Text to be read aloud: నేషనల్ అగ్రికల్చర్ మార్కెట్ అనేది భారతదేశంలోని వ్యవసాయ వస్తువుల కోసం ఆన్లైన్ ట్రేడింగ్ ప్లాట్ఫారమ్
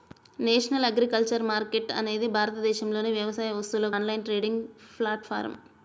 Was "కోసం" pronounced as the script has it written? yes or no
no